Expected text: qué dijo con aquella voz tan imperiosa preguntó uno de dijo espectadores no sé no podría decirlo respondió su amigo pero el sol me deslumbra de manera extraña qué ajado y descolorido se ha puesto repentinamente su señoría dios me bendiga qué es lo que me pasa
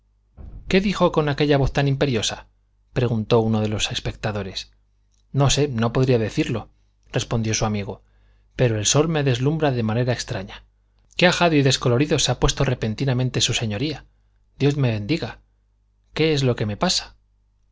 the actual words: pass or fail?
fail